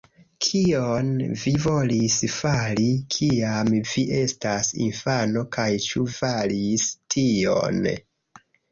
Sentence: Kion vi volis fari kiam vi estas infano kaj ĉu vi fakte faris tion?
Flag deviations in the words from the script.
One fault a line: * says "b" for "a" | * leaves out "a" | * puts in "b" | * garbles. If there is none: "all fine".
* leaves out "vi fakte"